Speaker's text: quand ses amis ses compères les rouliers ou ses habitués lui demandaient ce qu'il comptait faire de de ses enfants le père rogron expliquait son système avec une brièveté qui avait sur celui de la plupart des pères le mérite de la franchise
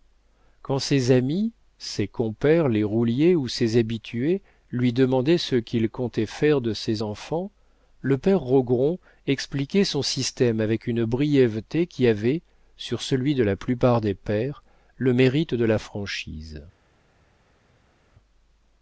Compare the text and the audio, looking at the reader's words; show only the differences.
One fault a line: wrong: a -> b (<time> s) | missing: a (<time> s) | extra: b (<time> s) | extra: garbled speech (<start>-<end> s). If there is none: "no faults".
missing: de (6.7 s)